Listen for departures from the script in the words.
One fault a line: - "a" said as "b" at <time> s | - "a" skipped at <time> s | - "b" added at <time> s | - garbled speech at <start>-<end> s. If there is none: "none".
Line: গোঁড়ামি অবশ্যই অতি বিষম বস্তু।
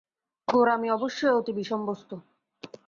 none